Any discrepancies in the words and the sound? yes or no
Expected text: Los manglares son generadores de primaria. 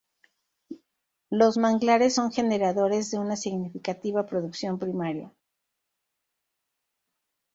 yes